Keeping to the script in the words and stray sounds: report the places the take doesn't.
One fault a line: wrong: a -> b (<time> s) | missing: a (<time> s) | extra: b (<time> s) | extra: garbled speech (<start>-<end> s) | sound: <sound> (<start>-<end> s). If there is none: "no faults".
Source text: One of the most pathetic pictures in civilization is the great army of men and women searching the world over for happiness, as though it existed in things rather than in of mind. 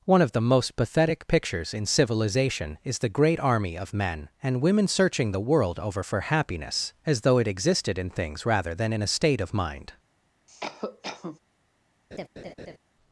extra: a state (9.0 s)
sound: cough (10.5-11.4 s)
sound: laugh (12.1-12.8 s)